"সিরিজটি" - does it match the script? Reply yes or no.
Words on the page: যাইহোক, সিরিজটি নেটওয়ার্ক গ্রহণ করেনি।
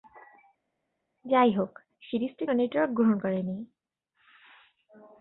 yes